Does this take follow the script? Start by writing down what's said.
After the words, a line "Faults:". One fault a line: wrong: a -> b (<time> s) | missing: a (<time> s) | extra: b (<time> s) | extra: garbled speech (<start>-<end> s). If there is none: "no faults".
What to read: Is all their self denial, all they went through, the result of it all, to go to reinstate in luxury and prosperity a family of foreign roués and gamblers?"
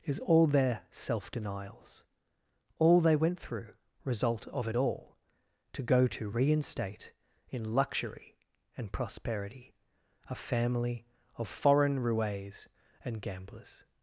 Is all their self denials, all they went through, result of it all, to go to reinstate in luxury and prosperity a family of foreign roués and gamblers?"
Faults:
wrong: denial -> denials (1.3 s)
missing: the (3.8 s)